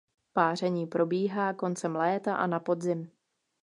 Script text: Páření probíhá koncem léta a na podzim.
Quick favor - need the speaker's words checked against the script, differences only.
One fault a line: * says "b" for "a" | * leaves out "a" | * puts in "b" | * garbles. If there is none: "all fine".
all fine